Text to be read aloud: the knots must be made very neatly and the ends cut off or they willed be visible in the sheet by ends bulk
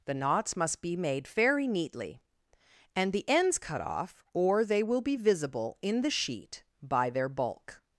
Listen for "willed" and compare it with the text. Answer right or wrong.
wrong